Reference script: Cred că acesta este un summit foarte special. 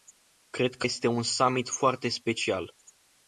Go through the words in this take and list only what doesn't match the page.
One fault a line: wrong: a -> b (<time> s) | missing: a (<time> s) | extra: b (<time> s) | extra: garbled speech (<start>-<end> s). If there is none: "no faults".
missing: acesta (0.9 s)